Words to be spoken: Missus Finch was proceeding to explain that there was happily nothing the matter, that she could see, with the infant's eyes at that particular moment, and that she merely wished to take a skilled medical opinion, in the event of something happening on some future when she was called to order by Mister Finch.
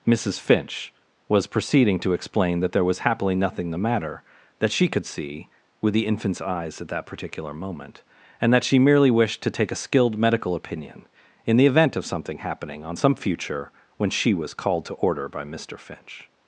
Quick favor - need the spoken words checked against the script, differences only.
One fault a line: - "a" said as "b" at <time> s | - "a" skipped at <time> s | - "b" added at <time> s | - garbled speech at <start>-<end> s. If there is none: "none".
none